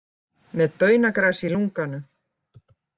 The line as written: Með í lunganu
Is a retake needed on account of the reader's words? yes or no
yes